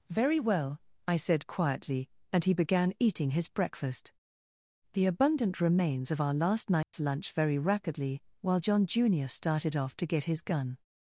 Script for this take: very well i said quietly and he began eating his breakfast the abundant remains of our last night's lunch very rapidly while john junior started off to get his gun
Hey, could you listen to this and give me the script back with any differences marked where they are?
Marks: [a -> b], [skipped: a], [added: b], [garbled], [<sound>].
very well i said quietly and he began eating his breakfast the abundant remains of our last night's [dropout] lunch very rapidly while john junior started off to get his gun